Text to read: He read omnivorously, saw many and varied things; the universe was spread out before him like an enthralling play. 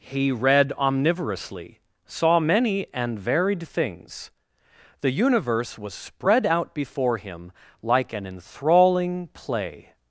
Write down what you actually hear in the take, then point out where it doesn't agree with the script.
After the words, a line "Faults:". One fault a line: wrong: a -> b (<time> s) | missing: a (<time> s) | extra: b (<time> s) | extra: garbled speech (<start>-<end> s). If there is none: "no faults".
He read omnivorously, saw many and varied things; the universe was spread out before him like an enthralling play.
Faults:
no faults